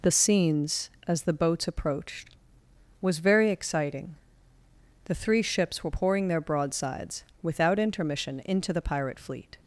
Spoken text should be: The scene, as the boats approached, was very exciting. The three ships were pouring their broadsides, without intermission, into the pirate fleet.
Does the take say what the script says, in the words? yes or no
no